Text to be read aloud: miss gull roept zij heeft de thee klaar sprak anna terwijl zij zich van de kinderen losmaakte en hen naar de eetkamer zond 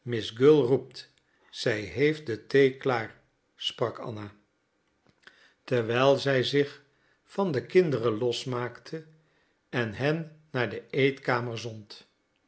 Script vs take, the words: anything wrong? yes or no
no